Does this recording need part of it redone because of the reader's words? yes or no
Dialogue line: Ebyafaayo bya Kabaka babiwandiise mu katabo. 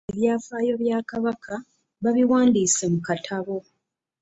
no